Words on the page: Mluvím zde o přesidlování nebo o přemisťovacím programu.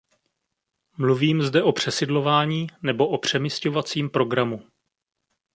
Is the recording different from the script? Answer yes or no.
no